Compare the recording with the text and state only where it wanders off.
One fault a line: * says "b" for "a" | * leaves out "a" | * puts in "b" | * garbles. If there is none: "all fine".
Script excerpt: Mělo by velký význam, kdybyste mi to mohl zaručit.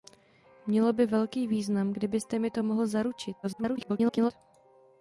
* garbles